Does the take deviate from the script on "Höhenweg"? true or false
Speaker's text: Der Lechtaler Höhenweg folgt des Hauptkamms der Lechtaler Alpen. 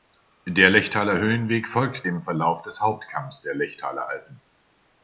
false